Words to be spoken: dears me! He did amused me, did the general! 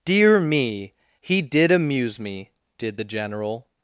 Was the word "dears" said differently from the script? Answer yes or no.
yes